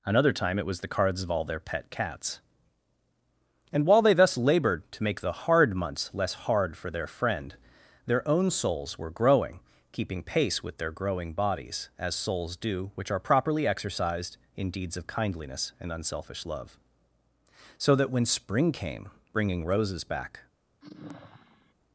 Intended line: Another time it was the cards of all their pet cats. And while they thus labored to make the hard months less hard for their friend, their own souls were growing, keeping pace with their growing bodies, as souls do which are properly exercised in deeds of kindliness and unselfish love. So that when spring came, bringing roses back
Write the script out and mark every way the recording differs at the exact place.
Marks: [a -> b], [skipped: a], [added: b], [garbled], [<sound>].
Another time it was the cards of all their pet cats. And while they thus labored to make the hard months less hard for their friend, their own souls were growing, keeping pace with their growing bodies, as souls do which are properly exercised in deeds of kindliness and unselfish love. So that when spring came, bringing roses back [sigh]